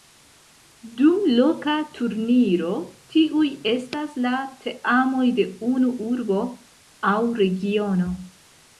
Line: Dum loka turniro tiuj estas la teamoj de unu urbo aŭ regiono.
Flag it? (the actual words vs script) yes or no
no